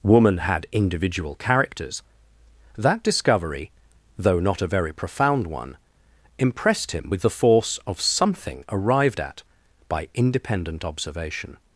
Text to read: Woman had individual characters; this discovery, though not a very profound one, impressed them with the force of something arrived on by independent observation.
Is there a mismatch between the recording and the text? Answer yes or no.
yes